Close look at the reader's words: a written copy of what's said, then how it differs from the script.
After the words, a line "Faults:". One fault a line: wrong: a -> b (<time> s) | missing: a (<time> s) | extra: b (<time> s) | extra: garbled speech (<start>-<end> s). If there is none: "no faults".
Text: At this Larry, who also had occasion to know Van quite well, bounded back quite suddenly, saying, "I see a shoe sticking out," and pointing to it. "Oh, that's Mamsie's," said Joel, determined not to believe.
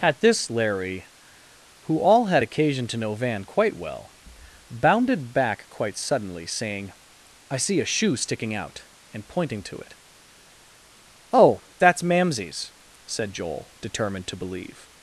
At this Larry, who all had occasion to know Van quite well, bounded back quite suddenly, saying, "I see a shoe sticking out," and pointing to it. "Oh, that's Mamsie's," said Joel, determined to believe.
Faults:
wrong: also -> all (2.0 s)
missing: not (14.3 s)